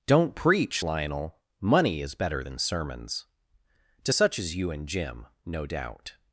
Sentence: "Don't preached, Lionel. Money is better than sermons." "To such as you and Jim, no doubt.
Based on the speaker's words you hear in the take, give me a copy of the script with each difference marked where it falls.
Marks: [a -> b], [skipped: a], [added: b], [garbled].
"Don't [preached, -> preach] Lionel. Money is better than sermons." "To such as you and Jim, no doubt.